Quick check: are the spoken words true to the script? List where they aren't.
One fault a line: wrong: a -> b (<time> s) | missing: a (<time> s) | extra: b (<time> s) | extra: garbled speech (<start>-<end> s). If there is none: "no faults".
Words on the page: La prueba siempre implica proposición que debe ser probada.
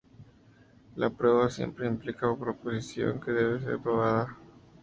no faults